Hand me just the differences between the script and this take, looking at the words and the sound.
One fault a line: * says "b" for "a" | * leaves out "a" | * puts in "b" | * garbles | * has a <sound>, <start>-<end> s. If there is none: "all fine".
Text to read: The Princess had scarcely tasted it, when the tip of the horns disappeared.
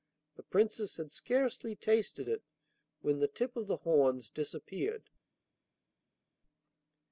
all fine